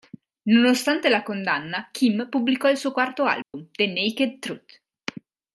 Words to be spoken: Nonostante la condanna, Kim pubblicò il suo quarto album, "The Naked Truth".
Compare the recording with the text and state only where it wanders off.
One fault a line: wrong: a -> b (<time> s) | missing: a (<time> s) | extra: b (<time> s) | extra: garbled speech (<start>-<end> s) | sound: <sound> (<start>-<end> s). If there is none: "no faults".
sound: dropout (3.4-3.5 s)